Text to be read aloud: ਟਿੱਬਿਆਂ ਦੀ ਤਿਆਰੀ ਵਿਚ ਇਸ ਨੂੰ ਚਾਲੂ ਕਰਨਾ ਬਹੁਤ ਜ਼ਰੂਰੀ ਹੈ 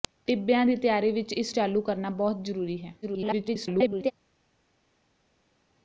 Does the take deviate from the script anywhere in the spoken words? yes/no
yes